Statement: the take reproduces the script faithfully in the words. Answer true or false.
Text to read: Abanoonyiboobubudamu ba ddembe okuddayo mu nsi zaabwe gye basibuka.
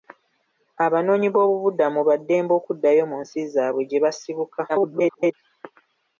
false